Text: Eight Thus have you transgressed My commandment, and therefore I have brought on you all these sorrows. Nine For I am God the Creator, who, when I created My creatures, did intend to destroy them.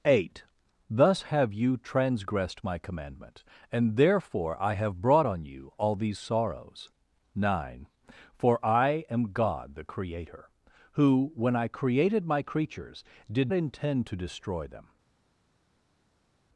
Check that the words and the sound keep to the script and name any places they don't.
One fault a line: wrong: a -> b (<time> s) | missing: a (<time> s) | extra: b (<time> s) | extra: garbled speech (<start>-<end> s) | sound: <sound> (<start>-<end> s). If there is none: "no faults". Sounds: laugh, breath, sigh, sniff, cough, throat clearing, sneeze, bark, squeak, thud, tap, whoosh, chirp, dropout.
no faults